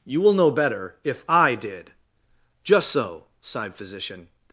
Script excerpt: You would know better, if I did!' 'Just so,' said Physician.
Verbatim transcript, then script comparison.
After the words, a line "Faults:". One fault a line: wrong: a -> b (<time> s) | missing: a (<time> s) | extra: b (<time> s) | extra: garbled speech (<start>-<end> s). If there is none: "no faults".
You will know better, if I did!' 'Just so,' sighed Physician.
Faults:
wrong: would -> will (0.2 s)
wrong: said -> sighed (3.4 s)